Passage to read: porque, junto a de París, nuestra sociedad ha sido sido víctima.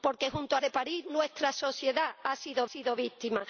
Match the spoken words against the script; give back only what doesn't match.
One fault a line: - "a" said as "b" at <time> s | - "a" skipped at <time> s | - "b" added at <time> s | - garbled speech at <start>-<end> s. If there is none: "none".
none